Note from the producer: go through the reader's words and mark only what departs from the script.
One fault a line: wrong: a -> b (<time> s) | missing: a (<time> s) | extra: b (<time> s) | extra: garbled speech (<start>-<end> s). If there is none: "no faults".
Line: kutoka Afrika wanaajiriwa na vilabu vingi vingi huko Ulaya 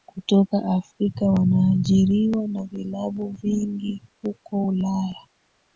missing: vingi (4.0 s)